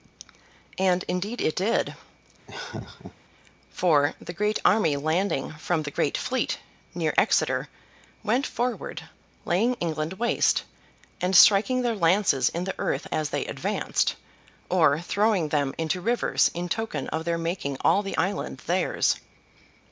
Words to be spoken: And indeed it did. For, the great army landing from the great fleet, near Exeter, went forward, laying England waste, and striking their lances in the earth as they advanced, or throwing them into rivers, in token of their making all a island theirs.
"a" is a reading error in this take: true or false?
true